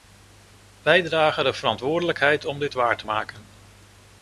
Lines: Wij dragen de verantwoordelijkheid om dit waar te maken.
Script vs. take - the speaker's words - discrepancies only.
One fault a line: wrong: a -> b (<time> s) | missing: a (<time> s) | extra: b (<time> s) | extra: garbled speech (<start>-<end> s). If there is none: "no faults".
no faults